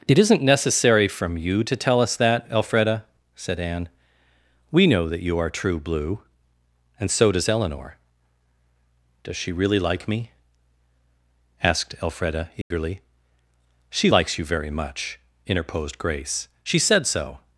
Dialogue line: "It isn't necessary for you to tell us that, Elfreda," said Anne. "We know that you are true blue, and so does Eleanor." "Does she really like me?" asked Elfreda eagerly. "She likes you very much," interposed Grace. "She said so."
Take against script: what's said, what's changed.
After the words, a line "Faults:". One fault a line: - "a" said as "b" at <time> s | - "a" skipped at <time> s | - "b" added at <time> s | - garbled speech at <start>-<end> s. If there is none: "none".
"It isn't necessary from you to tell us that, Elfreda," said Anne. "We know that you are true blue, and so does Eleanor." "Does she really like me?" asked Elfreda eagerly. "She likes you very much," interposed Grace. "She said so."
Faults:
- "for" said as "from" at 1.1 s